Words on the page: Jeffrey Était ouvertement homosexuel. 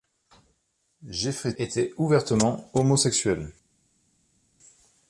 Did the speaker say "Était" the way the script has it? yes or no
yes